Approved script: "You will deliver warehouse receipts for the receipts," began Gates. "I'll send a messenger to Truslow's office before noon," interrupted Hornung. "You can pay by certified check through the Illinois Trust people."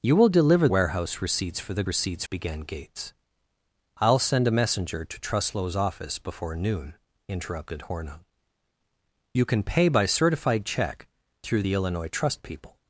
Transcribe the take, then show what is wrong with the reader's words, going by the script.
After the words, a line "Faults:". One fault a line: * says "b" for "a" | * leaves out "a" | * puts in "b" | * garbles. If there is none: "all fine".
"You will deliver warehouse receipts for the receipts," began Gates. "I'll send a messenger to Truslow's office before noon," interrupted Hornung. "You can pay by certified check through the Illinois Trust people."
Faults:
all fine